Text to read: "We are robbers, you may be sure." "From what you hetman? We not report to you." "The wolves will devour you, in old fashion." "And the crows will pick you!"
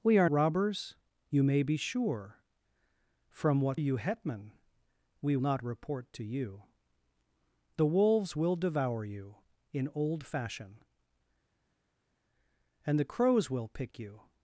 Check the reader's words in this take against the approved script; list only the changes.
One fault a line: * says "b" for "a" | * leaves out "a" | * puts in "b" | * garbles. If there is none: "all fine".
all fine